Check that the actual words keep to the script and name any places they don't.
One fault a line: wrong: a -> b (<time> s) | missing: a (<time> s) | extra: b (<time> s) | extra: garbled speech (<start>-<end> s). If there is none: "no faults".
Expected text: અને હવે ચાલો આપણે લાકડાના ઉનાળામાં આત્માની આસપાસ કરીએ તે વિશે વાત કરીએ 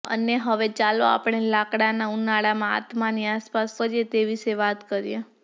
no faults